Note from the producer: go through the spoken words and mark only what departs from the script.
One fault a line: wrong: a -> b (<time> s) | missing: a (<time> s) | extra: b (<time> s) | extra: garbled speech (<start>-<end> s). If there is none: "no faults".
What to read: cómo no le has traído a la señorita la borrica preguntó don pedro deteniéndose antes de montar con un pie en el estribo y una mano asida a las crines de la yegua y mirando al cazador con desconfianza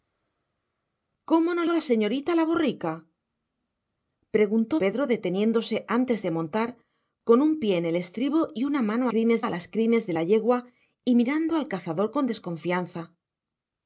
missing: le has traído (1.6 s)
missing: don (4.7 s)
wrong: asida -> crines (9.1 s)